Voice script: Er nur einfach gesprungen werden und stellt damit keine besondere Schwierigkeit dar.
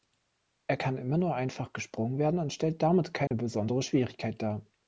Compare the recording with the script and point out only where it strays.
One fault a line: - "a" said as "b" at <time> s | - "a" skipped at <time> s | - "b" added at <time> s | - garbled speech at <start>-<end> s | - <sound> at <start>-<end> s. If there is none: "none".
- "kann immer" added at 0.7 s
- dropout at 3.3-3.3 s